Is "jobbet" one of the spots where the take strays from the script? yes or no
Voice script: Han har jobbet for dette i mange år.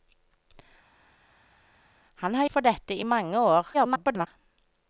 yes